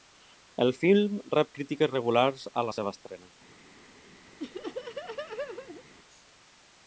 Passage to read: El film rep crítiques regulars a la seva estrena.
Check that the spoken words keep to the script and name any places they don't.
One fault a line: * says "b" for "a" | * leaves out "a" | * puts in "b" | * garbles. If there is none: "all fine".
all fine